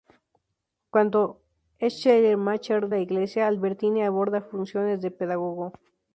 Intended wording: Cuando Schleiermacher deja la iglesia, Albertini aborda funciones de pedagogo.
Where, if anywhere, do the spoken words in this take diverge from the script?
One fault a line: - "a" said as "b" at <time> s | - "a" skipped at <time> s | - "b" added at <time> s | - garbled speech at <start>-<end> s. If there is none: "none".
- "deja" skipped at 2.9 s